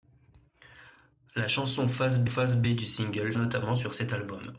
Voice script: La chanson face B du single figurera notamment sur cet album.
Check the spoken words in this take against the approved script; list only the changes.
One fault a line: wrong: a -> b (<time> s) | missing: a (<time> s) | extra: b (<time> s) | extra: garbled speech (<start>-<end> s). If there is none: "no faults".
extra: face B (2.2 s)
missing: figurera (3.3 s)